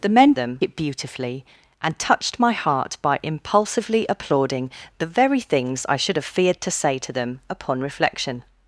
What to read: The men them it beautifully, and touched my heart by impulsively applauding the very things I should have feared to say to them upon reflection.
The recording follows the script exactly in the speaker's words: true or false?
true